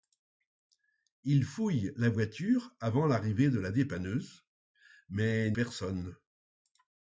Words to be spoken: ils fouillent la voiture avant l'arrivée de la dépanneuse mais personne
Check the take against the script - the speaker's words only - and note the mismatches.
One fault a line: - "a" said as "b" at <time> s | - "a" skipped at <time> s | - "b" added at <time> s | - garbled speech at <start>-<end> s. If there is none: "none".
none